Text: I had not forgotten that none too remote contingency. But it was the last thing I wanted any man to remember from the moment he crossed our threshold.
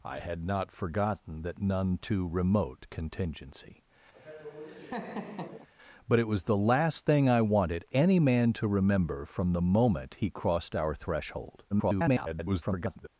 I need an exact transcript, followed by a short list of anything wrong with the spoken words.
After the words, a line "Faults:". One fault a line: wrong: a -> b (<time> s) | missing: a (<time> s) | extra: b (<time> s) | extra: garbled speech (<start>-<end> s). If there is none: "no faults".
I had not forgotten that none too remote contingency. But it was the last thing I wanted any man to remember from the moment he crossed our threshold. [garbled]
Faults:
extra: garbled speech (11.7-13.1 s)